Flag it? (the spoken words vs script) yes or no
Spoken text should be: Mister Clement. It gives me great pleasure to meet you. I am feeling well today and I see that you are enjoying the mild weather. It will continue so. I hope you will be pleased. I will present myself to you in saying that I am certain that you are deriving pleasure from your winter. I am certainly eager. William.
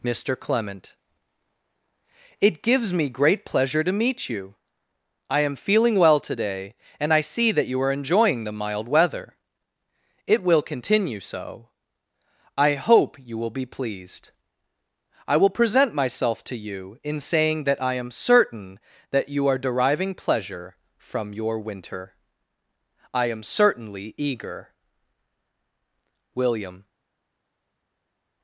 no